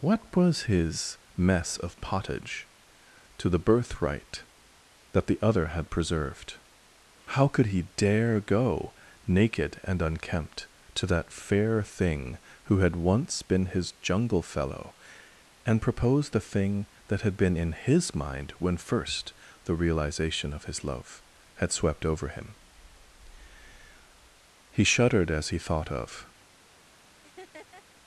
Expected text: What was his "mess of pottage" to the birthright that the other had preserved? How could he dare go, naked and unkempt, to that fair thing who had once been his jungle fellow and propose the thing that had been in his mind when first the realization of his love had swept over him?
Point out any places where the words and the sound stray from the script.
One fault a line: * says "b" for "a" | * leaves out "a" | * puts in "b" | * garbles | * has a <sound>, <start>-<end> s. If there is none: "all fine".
* puts in "He shuddered as he thought of"
* has a laugh, 27.2-27.8 s